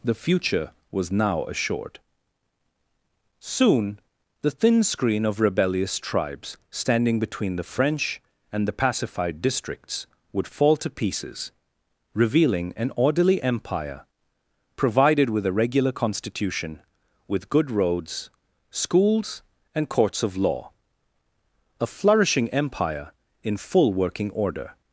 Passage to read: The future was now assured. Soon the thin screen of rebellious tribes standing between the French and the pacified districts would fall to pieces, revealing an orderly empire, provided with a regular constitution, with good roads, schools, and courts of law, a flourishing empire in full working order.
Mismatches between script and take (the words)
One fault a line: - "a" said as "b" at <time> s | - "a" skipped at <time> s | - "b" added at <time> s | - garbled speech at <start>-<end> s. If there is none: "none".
none